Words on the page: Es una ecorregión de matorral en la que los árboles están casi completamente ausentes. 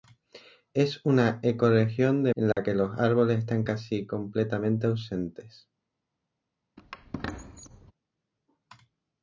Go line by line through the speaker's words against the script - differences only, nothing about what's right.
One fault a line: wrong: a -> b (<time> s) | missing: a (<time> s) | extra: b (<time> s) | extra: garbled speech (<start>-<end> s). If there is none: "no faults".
missing: matorral (2.3 s)